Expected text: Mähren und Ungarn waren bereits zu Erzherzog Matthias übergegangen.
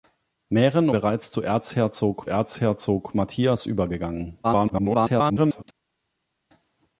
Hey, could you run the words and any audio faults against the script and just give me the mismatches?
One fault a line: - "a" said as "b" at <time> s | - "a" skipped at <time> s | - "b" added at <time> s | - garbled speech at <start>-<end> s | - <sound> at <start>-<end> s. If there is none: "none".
- "und Ungarn waren" skipped at 0.9 s
- "Erzherzog" added at 2.3 s
- garbled speech at 4.4-5.6 s